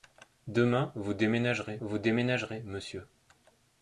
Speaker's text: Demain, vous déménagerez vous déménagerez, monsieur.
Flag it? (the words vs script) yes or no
no